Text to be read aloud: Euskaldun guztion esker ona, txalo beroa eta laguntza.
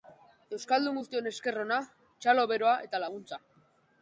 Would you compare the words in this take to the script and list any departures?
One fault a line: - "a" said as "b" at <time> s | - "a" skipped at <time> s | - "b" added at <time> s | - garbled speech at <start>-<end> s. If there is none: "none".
none